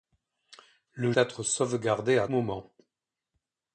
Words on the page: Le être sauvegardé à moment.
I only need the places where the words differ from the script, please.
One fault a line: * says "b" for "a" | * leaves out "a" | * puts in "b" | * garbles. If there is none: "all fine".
all fine